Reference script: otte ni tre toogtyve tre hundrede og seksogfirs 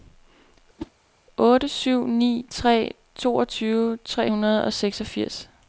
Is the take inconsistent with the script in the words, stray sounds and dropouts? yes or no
yes